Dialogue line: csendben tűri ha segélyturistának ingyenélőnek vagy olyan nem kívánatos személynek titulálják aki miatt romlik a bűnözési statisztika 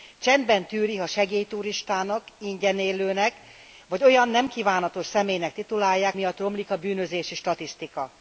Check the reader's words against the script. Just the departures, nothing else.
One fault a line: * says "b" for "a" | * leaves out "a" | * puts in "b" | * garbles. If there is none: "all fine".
* leaves out "aki"